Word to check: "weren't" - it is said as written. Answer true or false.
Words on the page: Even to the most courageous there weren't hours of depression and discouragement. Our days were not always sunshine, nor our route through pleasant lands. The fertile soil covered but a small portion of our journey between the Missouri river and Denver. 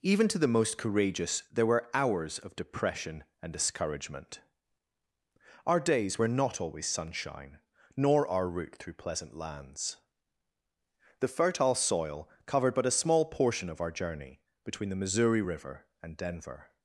false